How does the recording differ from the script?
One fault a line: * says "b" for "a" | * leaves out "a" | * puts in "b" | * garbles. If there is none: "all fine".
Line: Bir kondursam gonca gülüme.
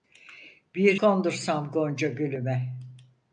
all fine